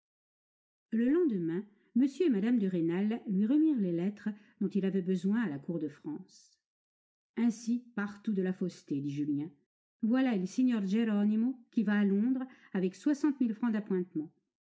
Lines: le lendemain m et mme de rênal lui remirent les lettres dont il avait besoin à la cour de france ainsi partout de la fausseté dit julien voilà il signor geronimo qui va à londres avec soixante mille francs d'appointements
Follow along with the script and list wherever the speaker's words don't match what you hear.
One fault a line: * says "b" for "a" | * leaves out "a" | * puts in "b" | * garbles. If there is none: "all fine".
all fine